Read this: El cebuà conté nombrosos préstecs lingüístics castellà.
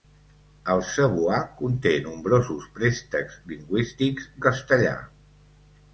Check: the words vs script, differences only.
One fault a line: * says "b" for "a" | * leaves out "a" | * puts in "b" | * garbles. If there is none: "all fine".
all fine